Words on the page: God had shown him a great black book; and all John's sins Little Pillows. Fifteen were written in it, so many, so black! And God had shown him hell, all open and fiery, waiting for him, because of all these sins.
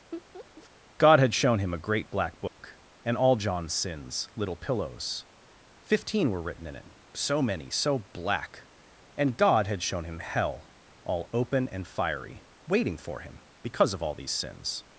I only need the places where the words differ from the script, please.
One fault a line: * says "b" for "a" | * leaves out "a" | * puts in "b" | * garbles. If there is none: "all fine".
all fine